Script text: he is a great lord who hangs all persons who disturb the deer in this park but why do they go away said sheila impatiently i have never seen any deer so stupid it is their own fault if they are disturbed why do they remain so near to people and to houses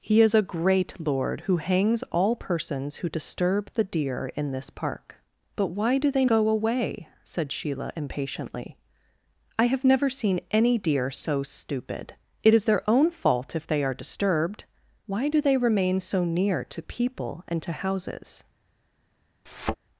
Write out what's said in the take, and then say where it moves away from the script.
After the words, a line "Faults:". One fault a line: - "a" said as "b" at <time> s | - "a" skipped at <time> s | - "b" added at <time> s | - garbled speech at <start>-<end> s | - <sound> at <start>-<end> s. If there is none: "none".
he is a great lord who hangs all persons who disturb the deer in this park but why do they go away said sheila impatiently i have never seen any deer so stupid it is their own fault if they are disturbed why do they remain so near to people and to houses
Faults:
- thud at 19.5-19.8 s